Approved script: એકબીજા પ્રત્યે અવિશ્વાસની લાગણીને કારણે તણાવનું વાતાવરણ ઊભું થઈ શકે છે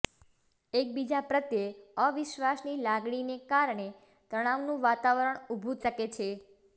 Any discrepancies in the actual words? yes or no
yes